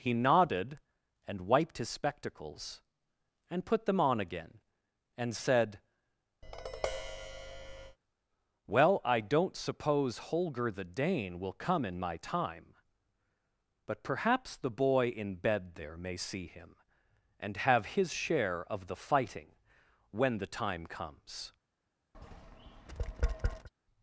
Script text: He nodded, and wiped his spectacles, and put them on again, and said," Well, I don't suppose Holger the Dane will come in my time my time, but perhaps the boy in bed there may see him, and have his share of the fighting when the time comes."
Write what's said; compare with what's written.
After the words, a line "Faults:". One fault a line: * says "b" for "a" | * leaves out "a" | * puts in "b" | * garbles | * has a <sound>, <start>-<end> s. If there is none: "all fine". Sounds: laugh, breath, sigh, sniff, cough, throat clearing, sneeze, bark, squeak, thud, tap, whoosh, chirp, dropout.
He nodded, and wiped his spectacles, and put them on again, and said," Well, I don't suppose Holger the Dane will come in my time, but perhaps the boy in bed there may see him, and have his share of the fighting when the time comes."
Faults:
* has a tap, 6.4-8.0 s
* leaves out "my time"
* has a tap, 22.1-23.7 s